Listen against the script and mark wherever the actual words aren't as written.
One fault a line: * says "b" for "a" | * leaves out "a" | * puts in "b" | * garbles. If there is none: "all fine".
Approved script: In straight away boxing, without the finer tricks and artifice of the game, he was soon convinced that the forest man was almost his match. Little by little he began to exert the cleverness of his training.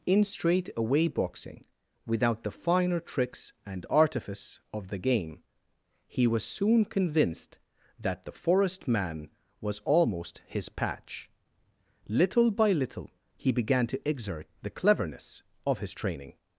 * says "patch" for "match"